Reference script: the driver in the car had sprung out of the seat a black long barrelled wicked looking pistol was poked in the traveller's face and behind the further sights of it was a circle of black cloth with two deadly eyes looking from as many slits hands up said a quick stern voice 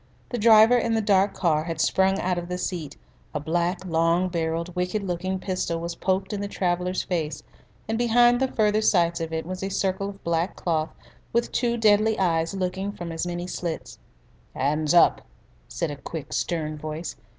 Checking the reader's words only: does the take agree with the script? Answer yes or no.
no